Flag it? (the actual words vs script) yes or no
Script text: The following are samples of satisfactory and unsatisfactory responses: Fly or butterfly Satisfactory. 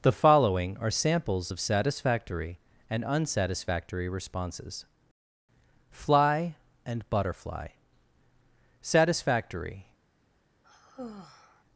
yes